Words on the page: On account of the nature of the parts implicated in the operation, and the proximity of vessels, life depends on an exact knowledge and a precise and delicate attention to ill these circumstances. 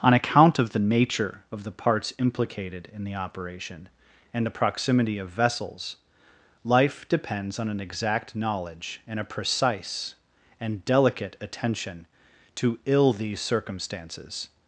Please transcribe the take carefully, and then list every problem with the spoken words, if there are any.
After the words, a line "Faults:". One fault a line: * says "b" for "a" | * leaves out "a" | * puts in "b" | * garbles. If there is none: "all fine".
On account of the nature of the parts implicated in the operation, and the proximity of vessels, life depends on an exact knowledge and a precise and delicate attention to ill these circumstances.
Faults:
all fine